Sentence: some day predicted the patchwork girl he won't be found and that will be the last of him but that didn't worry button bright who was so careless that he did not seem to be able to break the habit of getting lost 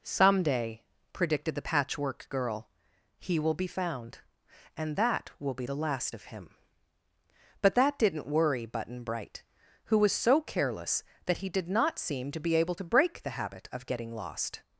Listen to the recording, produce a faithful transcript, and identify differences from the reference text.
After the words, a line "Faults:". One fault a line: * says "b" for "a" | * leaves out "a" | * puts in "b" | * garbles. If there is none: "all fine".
some day predicted the patchwork girl he will be found and that will be the last of him but that didn't worry button bright who was so careless that he did not seem to be able to break the habit of getting lost
Faults:
* says "will" for "won't"